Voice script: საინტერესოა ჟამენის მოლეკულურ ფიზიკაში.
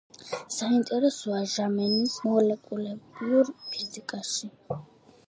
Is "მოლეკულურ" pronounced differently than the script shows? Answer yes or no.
no